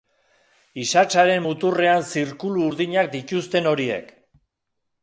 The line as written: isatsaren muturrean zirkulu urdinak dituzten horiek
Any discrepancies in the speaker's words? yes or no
no